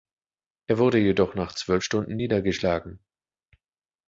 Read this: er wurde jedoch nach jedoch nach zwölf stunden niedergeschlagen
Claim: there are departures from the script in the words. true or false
true